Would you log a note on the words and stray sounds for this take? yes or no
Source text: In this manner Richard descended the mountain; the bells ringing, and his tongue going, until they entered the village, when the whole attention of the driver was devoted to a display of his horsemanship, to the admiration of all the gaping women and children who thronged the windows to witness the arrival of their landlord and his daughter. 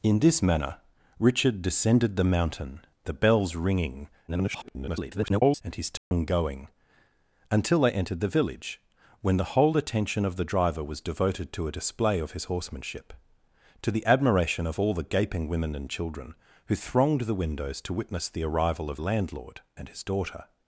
yes